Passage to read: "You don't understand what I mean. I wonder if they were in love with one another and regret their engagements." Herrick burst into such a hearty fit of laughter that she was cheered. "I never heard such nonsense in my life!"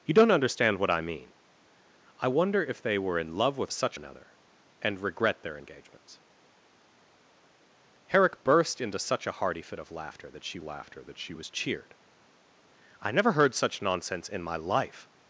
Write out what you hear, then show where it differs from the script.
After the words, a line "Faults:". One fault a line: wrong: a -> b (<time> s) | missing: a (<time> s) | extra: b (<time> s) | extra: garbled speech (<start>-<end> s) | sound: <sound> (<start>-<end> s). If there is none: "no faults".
"You don't understand what I mean. I wonder if they were in love with such another and regret their engagements." Herrick burst into such a hearty fit of laughter that she laughter that she was cheered. "I never heard such nonsense in my life!"
Faults:
wrong: one -> such (3.7 s)
extra: laughter that she (10.6 s)